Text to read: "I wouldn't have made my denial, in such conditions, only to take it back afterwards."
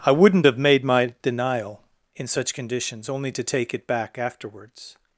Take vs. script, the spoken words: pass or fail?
pass